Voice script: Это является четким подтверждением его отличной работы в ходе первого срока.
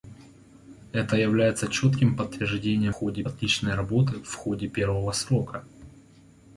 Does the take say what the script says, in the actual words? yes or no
no